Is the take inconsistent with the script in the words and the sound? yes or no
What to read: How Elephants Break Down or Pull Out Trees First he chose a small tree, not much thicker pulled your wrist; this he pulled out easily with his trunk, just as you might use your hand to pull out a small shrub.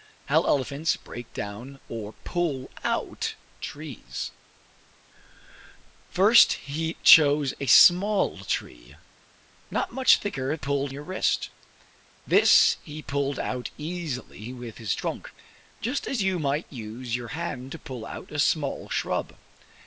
no